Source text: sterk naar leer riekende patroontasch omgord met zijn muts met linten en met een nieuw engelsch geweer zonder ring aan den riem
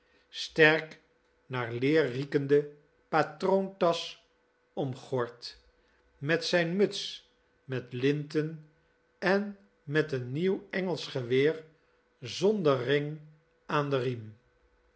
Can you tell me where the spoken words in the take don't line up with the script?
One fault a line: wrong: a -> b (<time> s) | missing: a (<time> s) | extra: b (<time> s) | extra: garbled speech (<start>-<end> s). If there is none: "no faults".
no faults